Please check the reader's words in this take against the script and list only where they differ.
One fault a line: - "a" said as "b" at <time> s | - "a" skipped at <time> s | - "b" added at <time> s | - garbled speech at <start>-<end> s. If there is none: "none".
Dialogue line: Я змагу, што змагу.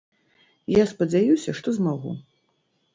- "змагу" said as "спадзяюся" at 0.9 s